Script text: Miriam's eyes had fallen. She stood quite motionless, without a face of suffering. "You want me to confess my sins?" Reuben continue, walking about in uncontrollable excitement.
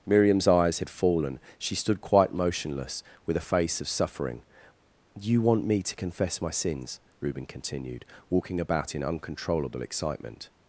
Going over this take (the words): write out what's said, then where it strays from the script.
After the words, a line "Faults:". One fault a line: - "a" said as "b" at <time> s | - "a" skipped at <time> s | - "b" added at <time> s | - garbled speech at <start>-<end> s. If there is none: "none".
Miriam's eyes had fallen. She stood quite motionless, with a face of suffering. "You want me to confess my sins?" Reuben continued, walking about in uncontrollable excitement.
Faults:
- "without" said as "with" at 3.3 s
- "continue" said as "continued" at 7.5 s